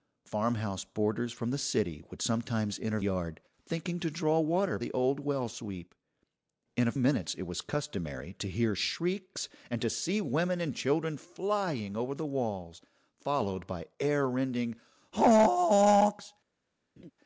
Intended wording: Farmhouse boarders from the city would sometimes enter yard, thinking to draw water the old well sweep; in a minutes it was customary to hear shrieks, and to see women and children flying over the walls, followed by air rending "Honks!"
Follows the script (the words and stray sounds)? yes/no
no